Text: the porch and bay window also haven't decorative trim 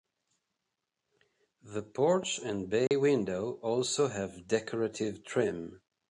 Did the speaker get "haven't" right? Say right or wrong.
wrong